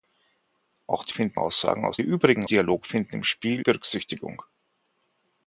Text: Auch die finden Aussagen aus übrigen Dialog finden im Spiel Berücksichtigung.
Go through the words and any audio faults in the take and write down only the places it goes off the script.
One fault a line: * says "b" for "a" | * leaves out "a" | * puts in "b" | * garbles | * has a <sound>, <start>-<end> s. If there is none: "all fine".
all fine